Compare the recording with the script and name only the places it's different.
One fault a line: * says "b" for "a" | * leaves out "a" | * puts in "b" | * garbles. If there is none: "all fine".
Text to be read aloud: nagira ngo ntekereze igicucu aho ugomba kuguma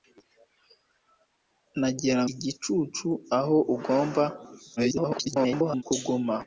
* leaves out "ngo ntekereze"
* garbles